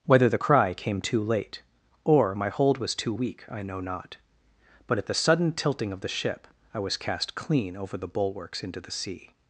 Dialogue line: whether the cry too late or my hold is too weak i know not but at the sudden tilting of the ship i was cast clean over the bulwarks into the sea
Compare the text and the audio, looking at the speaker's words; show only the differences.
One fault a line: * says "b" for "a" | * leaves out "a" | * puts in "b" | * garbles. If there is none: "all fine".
* puts in "came"
* says "was" for "is"